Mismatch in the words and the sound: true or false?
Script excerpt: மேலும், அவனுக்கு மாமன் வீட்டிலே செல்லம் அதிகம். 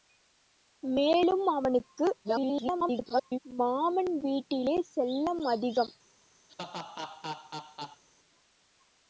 true